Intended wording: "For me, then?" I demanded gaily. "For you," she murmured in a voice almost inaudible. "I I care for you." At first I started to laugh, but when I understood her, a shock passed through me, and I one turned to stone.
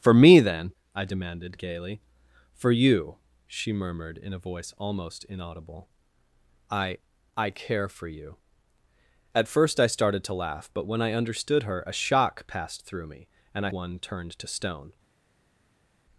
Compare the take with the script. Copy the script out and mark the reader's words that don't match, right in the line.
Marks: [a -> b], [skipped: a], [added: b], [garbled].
"For me, then?" I demanded gaily. "For you," she murmured in a voice almost inaudible. "I I care for you." At first I started to laugh, but when I understood her, a shock passed through me, and I one turned to stone.